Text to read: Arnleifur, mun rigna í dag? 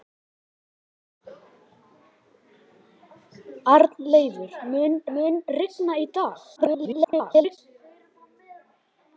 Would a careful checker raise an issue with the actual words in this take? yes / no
yes